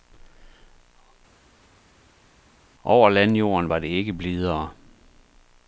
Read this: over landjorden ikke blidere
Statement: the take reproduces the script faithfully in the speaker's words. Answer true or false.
false